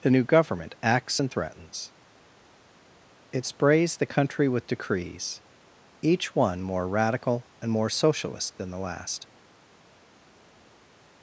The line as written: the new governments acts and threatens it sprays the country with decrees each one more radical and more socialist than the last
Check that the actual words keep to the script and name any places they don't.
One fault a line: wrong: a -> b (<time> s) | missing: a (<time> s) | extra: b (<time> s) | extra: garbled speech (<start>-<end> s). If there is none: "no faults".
wrong: governments -> government (0.2 s)